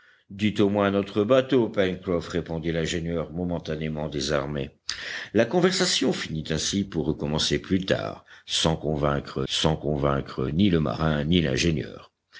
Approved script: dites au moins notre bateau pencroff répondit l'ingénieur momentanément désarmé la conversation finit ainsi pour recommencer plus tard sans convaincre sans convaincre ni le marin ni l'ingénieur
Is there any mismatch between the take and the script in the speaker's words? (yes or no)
no